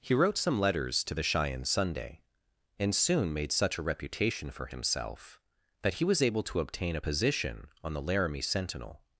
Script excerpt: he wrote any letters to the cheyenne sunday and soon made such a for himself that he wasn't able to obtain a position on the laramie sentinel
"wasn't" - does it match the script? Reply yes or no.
no